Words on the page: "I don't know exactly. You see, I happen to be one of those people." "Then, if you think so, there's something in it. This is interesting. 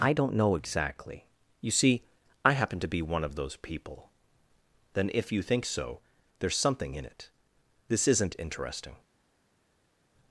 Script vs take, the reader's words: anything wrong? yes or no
yes